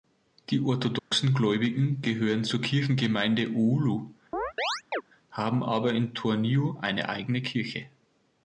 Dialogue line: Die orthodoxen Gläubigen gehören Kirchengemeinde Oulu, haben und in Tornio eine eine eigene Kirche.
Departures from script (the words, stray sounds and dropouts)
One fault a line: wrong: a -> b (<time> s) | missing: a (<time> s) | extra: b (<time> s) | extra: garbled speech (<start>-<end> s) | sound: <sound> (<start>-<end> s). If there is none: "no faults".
sound: dropout (1.0-1.1 s)
extra: zur (2.4 s)
sound: chirp (4.3-5.0 s)
wrong: und -> aber (5.6 s)
missing: eine (7.1 s)